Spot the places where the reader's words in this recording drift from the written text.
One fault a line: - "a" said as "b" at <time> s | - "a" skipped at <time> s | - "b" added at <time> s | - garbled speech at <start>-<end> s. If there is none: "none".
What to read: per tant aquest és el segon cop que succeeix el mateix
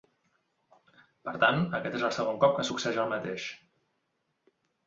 none